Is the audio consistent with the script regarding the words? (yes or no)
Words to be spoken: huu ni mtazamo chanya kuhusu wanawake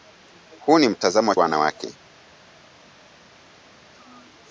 no